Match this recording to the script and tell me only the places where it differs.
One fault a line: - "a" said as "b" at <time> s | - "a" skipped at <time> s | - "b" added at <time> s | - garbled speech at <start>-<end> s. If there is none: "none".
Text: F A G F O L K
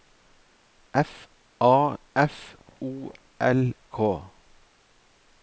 - "G" skipped at 1.9 s